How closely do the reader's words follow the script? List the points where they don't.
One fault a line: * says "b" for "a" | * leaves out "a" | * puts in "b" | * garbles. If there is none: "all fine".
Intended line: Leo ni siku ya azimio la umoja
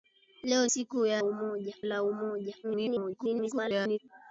* leaves out "ni"
* says "umoja" for "azimio"
* garbles